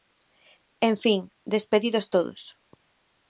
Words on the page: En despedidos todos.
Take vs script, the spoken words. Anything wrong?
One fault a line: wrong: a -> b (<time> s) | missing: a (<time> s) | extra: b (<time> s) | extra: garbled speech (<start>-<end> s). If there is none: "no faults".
extra: fin (1.0 s)